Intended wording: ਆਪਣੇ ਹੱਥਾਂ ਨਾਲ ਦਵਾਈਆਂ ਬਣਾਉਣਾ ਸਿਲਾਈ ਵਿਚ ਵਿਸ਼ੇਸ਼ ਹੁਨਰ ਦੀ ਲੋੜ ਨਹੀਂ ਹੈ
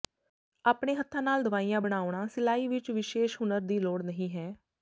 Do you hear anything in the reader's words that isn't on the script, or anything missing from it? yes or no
no